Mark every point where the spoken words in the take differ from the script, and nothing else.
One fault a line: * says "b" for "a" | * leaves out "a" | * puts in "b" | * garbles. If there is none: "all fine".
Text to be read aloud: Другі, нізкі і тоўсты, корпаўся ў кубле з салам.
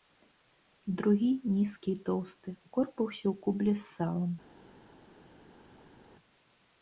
all fine